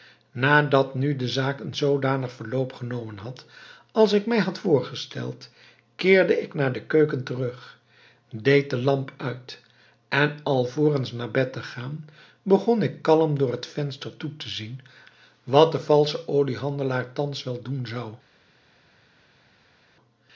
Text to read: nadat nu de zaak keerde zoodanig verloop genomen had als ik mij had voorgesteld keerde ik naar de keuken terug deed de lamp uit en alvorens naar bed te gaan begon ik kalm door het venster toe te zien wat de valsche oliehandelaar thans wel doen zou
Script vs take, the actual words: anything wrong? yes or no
yes